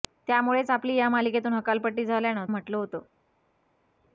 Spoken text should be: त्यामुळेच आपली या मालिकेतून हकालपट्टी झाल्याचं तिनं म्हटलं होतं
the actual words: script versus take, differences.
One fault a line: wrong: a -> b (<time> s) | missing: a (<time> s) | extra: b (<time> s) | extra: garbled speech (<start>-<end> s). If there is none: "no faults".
missing: तिनं (2.5 s)